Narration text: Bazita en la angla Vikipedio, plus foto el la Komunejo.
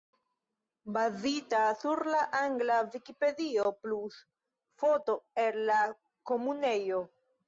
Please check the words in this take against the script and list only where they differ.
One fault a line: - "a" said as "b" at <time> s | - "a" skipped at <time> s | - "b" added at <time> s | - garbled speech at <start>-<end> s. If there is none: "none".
- "en" said as "sur" at 1.8 s